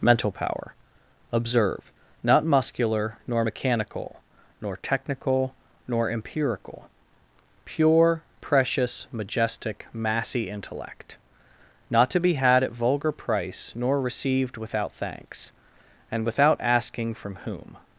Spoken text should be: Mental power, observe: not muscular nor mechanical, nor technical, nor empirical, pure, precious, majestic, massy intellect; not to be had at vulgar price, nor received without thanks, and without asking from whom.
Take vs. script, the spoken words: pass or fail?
pass